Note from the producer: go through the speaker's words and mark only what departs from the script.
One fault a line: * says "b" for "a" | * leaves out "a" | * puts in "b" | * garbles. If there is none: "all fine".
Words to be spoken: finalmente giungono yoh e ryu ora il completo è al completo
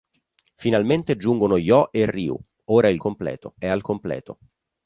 all fine